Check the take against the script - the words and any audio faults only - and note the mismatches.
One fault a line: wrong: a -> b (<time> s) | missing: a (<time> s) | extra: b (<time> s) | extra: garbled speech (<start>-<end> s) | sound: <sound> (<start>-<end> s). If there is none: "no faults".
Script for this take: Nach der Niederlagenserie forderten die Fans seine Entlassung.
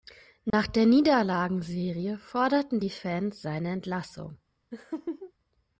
sound: dropout (0.5-0.5 s)
sound: laugh (4.7-5.3 s)